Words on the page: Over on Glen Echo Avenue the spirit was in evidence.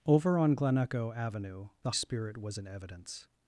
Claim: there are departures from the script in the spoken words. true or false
false